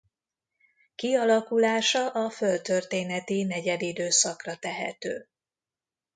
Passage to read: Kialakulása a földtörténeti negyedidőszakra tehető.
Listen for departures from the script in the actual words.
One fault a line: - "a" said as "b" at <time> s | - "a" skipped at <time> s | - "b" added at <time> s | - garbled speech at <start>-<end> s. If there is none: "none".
none